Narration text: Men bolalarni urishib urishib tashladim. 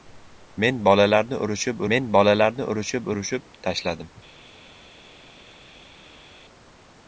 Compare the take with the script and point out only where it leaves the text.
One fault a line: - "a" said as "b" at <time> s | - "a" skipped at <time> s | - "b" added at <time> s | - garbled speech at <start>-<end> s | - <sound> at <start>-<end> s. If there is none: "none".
- "men bolalarni urishib" added at 1.9 s